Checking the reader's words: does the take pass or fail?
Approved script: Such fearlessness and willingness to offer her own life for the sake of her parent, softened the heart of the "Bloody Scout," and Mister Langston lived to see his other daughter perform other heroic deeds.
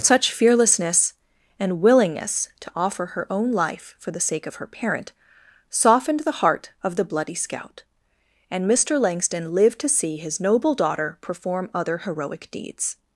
fail